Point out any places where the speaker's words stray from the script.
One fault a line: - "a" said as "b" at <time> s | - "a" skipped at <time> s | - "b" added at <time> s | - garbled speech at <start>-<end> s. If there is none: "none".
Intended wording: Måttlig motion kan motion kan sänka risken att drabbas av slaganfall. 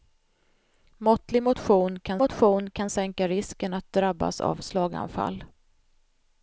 none